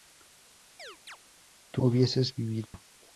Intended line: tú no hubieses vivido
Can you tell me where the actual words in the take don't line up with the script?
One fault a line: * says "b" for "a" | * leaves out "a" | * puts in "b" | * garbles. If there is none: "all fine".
* leaves out "no"